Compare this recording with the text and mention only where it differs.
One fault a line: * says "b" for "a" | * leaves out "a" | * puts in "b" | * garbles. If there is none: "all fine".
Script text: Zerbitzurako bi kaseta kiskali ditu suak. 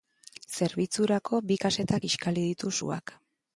all fine